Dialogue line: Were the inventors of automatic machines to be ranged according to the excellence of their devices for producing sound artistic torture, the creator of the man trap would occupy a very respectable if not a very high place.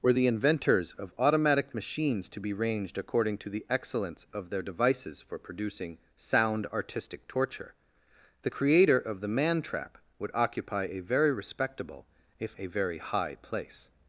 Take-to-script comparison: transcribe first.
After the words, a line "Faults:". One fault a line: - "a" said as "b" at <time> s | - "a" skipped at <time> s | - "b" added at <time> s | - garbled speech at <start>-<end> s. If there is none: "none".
Were the inventors of automatic machines to be ranged according to the excellence of their devices for producing sound artistic torture, the creator of the man trap would occupy a very respectable if a very high place.
Faults:
- "not" skipped at 12.6 s